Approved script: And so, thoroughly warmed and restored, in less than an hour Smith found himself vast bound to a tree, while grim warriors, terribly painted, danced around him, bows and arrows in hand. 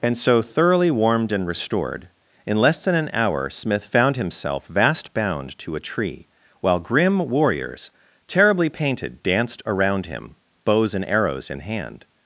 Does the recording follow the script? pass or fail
pass